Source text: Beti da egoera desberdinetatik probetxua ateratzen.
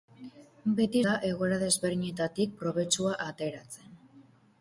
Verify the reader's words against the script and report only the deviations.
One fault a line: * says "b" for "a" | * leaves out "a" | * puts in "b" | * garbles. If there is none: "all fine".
all fine